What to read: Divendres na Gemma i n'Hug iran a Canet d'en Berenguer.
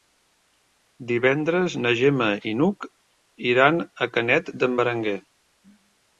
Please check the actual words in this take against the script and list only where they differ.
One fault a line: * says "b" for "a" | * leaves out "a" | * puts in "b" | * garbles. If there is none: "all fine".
all fine